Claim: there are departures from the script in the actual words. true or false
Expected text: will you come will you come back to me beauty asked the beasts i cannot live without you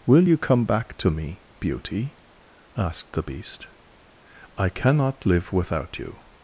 true